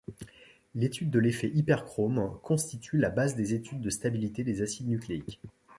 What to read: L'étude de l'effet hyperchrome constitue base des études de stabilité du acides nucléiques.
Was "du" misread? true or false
true